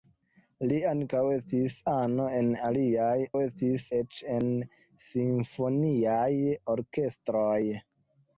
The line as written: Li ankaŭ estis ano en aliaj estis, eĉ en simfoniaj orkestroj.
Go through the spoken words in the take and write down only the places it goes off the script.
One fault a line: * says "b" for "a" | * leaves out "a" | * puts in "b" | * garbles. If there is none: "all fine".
all fine